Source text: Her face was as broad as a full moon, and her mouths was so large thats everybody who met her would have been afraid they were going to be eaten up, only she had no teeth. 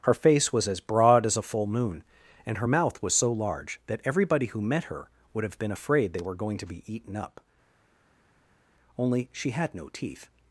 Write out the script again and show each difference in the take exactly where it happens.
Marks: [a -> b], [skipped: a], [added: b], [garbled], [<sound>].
Her face was as broad as a full moon, and her [mouths -> mouth] was so large [thats -> that] everybody who met her would have been afraid they were going to be eaten up, only she had no teeth.